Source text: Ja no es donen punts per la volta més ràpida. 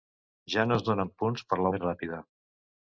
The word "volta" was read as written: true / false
false